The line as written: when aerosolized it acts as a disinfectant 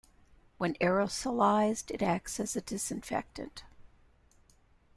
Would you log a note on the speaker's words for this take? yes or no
no